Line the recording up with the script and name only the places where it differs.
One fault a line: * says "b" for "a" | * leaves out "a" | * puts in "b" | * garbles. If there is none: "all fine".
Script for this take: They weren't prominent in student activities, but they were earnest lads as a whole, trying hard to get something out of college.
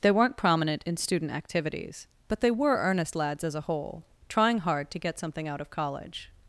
all fine